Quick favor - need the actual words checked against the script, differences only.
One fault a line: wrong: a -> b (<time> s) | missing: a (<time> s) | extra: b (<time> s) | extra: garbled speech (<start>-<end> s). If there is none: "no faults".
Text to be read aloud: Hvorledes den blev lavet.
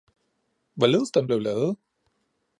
no faults